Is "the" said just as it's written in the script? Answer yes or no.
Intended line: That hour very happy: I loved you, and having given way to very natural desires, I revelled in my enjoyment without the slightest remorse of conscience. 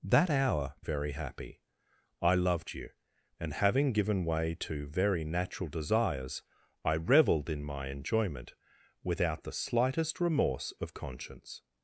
yes